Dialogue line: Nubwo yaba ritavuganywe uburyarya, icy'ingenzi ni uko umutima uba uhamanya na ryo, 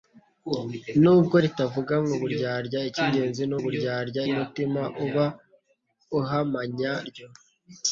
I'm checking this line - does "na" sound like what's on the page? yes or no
no